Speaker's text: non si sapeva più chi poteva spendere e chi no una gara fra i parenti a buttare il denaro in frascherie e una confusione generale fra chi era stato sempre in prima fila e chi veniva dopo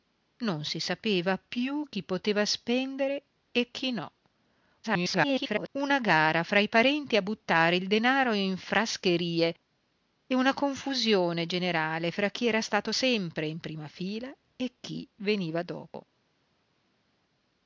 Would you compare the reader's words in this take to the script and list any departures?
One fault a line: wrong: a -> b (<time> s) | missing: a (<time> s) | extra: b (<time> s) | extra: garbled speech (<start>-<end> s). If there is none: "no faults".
extra: garbled speech (4.8-5.7 s)